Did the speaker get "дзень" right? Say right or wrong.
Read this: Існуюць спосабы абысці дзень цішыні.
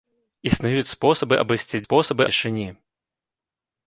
wrong